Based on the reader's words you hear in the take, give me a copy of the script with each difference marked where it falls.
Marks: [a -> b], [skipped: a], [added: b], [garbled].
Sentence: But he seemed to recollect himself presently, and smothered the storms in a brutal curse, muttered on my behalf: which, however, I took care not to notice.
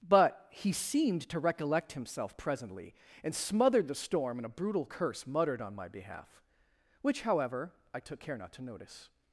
But he seemed to recollect himself presently, and smothered the [storms -> storm] in a brutal curse, muttered on my behalf: which, however, I took care not to notice.